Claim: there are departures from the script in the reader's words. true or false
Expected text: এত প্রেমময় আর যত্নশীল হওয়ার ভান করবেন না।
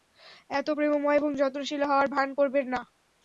true